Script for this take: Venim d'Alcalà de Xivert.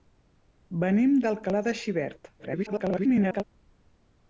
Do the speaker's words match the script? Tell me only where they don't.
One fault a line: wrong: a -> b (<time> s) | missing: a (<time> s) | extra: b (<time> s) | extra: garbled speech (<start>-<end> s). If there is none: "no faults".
extra: garbled speech (2.4-3.4 s)